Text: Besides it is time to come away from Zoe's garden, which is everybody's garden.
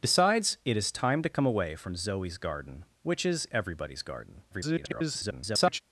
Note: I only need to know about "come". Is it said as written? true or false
true